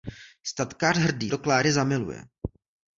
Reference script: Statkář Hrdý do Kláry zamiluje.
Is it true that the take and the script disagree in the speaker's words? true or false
false